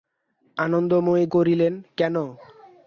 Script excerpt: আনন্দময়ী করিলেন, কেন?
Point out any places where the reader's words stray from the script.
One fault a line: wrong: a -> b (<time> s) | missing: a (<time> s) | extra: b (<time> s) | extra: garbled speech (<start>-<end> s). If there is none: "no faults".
no faults